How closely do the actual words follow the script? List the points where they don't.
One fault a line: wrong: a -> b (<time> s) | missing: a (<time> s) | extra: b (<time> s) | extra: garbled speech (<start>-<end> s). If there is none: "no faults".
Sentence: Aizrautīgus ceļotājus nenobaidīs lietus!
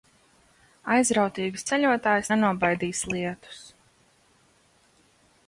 no faults